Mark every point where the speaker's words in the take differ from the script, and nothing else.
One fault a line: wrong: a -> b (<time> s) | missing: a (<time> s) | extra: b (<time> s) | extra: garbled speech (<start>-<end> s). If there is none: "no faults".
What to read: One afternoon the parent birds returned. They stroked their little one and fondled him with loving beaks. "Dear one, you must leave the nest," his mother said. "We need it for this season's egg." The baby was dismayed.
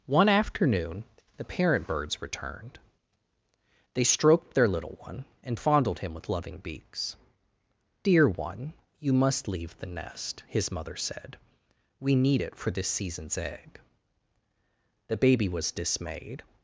no faults